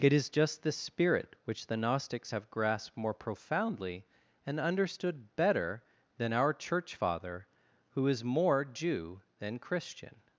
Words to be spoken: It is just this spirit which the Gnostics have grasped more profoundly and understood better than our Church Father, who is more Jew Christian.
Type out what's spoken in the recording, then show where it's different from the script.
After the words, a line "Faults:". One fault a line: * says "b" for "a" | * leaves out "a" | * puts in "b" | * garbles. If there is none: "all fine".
It is just this spirit which the Gnostics have grasped more profoundly and understood better than our Church Father, who is more Jew than Christian.
Faults:
* puts in "than"